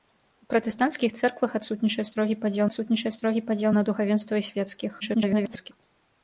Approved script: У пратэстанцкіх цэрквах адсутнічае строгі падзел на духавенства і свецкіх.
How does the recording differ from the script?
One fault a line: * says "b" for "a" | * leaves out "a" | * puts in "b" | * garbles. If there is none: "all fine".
* puts in "адсутнічае строгі падзел"
* garbles